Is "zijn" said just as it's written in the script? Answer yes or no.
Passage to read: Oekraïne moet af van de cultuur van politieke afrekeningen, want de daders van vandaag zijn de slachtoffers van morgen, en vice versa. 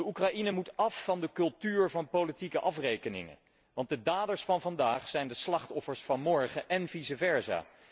yes